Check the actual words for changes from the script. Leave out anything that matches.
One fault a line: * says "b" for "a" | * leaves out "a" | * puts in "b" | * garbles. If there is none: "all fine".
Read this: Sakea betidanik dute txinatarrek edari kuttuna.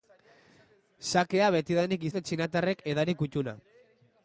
all fine